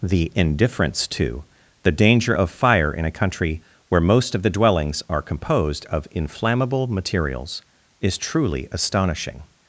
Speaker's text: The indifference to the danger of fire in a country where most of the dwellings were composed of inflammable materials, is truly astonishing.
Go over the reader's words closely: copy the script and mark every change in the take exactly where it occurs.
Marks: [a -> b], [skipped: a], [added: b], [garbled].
The indifference to the danger of fire in a country where most of the dwellings [were -> are] composed of inflammable materials, is truly astonishing.